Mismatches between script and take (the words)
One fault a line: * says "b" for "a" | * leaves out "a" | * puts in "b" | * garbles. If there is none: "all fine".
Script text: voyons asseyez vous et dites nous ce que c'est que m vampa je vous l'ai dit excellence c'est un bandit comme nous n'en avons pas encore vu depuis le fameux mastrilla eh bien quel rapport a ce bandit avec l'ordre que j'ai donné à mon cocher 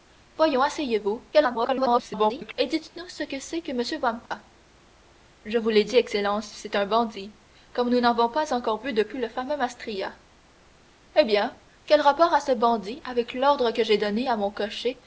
* garbles